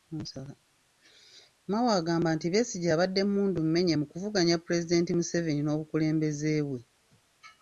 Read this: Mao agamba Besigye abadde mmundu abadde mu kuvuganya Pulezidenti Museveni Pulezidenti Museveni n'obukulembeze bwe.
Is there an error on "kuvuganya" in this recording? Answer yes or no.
no